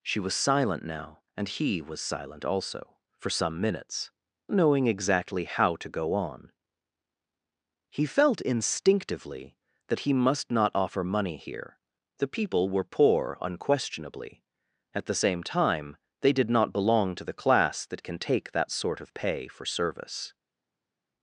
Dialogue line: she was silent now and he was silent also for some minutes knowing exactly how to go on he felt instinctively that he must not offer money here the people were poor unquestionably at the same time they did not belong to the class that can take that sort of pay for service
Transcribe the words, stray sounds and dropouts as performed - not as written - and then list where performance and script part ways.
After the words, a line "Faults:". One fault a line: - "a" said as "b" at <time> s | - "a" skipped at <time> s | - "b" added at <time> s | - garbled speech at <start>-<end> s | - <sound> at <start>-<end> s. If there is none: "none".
she was silent now and he was silent also for some minutes knowing exactly how to go on he felt instinctively that he must not offer money here the people were poor unquestionably at the same time they did not belong to the class that can take that sort of pay for service
Faults:
none